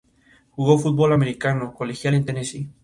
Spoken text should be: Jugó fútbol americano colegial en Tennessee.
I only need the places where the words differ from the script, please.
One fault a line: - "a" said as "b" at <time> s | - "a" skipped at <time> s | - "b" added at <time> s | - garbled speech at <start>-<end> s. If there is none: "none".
none